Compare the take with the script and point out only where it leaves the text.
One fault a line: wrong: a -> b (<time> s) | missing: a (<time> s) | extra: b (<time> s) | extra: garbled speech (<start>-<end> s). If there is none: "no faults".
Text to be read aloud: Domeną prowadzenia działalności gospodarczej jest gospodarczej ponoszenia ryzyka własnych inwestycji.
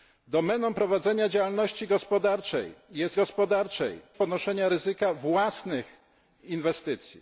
no faults